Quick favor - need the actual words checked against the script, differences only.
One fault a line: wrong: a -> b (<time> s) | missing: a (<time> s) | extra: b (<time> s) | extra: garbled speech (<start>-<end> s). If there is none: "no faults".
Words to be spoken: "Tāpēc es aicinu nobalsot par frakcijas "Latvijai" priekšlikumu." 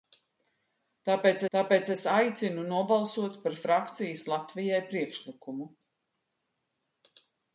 extra: tāpēc (1.6 s)